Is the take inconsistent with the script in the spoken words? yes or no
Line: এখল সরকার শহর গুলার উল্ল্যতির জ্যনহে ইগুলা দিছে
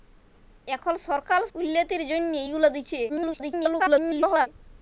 yes